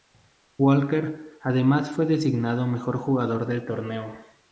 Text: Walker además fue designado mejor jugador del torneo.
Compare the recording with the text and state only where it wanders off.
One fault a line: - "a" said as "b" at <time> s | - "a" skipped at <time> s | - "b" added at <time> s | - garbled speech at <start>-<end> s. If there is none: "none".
none